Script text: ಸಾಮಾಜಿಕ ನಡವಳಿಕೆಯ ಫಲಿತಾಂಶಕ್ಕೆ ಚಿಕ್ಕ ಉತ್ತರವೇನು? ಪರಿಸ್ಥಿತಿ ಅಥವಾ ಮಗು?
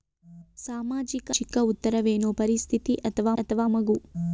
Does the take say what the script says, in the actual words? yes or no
no